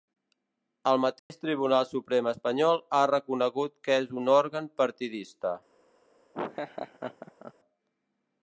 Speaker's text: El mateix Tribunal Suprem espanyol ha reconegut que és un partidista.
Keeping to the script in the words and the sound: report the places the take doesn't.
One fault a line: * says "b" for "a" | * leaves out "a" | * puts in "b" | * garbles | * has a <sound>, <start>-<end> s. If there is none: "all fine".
* has a dropout, 1.2-1.3 s
* puts in "òrgan"
* has a laugh, 6.3-7.5 s